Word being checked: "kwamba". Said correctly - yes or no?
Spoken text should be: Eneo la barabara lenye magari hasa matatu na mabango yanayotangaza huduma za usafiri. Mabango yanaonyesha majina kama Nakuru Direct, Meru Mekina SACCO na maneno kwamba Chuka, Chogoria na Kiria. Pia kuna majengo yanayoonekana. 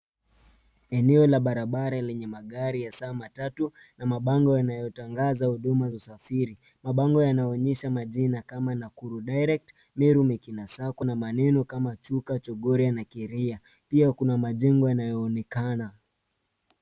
no